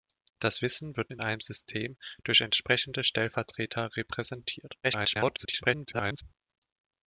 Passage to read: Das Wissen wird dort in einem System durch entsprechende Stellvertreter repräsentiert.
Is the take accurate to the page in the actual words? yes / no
no